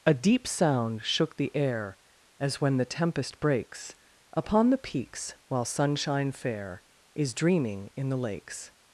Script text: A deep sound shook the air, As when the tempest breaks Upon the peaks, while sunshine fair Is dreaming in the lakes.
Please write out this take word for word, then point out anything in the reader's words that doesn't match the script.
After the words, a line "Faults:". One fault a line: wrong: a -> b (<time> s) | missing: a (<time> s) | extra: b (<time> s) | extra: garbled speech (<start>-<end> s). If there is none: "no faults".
A deep sound shook the air, As when the tempest breaks Upon the peaks, while sunshine fair Is dreaming in the lakes.
Faults:
no faults